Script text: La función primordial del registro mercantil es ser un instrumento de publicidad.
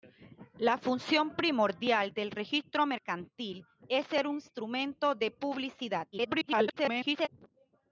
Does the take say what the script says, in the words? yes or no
no